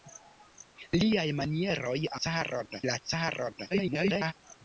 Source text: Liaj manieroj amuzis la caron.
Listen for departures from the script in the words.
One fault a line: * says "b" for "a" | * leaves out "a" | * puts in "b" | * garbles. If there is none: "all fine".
* says "caron" for "amuzis"
* garbles